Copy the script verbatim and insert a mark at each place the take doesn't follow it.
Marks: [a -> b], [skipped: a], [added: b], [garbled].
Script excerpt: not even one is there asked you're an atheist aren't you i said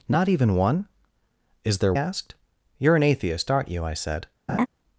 not even one is there asked you're an atheist aren't you i said